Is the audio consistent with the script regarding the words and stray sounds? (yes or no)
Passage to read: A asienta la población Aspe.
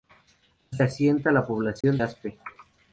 no